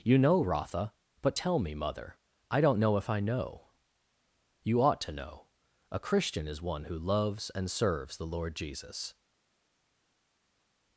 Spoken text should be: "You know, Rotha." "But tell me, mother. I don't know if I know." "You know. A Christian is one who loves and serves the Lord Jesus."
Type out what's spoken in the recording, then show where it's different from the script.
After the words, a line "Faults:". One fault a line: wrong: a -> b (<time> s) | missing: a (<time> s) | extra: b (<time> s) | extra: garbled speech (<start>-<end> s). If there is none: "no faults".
"You know, Rotha." "But tell me, mother. I don't know if I know." "You ought to know. A Christian is one who loves and serves the Lord Jesus."
Faults:
extra: ought to (4.8 s)